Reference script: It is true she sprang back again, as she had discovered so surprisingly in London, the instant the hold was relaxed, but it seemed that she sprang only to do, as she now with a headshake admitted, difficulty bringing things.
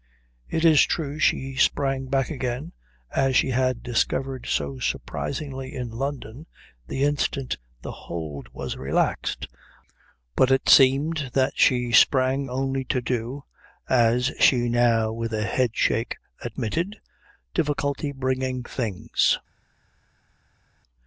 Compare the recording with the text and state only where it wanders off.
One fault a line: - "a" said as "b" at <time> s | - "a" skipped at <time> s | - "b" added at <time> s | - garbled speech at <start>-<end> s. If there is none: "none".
none